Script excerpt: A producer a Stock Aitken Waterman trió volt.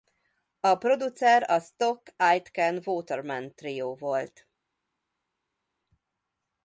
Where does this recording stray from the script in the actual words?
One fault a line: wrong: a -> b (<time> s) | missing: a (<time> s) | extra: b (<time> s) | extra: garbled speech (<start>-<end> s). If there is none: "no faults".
no faults